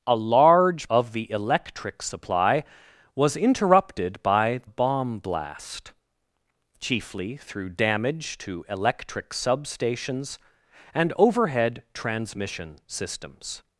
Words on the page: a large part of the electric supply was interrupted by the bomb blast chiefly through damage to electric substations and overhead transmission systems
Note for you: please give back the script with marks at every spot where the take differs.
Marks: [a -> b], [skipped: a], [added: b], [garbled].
a large [skipped: part] of the electric supply was interrupted by [skipped: the] bomb blast chiefly through damage to electric substations and overhead transmission systems